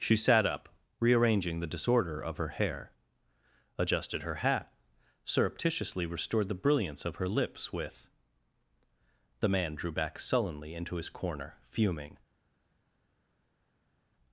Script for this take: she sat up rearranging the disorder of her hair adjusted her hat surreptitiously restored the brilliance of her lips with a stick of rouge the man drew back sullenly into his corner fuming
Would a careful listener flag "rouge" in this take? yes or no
yes